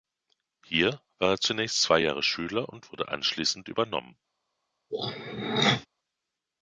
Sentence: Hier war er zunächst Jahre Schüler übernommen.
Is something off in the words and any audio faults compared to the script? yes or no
yes